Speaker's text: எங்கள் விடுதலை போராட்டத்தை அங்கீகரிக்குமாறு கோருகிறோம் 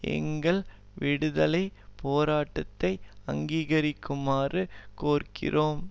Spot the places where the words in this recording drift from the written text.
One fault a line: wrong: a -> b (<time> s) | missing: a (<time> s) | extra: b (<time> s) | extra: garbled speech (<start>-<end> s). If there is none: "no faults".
no faults